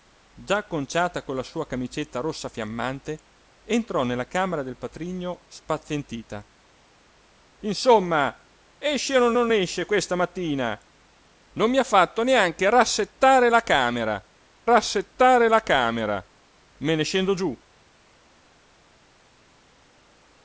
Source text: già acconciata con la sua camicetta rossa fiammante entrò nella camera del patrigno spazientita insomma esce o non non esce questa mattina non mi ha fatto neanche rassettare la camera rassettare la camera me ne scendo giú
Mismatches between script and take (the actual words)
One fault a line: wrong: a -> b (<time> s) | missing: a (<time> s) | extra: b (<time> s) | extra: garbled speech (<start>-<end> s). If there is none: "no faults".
no faults